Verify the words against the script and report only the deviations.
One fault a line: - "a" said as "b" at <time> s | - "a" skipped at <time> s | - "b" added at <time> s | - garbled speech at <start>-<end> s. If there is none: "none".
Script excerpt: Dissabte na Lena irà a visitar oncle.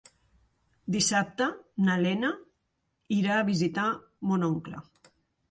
- "mon" added at 4.3 s